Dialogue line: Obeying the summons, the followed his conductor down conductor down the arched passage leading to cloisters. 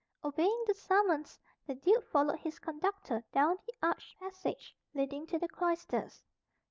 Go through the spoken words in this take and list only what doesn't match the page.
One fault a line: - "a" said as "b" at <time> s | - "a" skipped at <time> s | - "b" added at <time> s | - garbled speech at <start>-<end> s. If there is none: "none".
- "duke" added at 1.8 s
- "conductor down" skipped at 3.6 s
- "the" added at 5.4 s